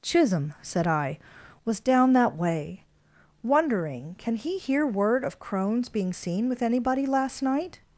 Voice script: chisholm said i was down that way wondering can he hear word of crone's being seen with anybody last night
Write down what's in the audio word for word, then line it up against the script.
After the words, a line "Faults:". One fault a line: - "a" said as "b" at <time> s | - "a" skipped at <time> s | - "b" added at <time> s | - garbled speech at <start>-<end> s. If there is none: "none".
chisholm said i was down that way wondering can he hear word of crone's being seen with anybody last night
Faults:
none